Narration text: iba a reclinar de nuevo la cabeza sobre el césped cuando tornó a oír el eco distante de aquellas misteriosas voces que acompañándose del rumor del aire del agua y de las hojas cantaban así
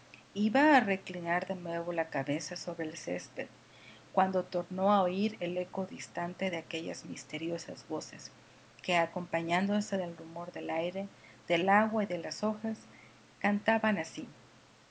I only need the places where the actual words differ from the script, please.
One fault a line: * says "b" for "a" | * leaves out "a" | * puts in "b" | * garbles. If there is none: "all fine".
all fine